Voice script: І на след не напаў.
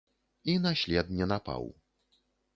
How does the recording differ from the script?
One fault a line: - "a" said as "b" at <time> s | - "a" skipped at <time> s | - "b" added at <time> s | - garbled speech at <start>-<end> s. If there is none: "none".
none